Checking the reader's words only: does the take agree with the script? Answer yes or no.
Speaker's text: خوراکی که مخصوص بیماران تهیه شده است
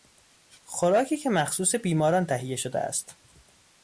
yes